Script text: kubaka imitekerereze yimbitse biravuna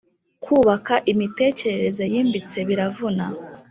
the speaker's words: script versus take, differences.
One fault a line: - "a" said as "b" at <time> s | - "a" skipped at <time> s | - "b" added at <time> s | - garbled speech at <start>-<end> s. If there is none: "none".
none